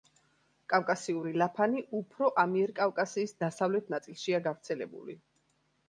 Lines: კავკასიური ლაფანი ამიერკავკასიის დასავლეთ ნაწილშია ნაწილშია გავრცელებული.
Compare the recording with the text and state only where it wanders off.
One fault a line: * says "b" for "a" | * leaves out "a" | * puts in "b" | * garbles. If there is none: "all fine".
* puts in "უფრო"
* leaves out "ნაწილშია"